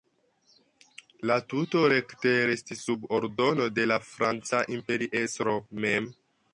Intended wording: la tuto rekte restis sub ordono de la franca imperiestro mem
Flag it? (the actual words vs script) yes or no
no